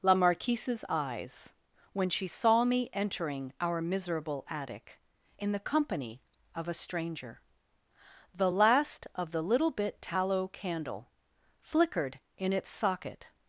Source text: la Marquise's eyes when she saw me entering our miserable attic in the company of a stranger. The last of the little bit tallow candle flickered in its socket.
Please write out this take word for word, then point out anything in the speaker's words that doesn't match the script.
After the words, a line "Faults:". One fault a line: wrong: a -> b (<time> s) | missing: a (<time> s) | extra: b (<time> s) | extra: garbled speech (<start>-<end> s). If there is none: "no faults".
la Marquise's eyes when she saw me entering our miserable attic in the company of a stranger. The last of the little bit tallow candle flickered in its socket.
Faults:
no faults